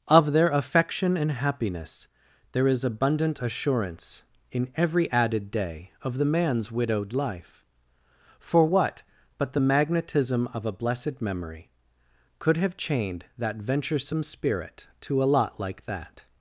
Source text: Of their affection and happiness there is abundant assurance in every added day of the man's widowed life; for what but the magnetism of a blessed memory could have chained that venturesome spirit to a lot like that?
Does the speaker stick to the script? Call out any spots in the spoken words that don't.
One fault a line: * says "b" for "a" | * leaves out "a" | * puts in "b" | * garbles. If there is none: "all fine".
all fine